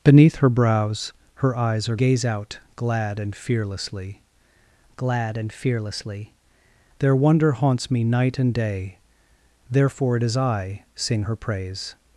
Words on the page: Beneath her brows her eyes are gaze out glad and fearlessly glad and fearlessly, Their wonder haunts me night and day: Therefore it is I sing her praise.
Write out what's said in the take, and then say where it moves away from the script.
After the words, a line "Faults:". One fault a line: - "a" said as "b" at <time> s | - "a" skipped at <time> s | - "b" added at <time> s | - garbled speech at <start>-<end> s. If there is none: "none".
Beneath her brows her eyes are gaze out glad and fearlessly glad and fearlessly, Their wonder haunts me night and day: Therefore it is I sing her praise.
Faults:
none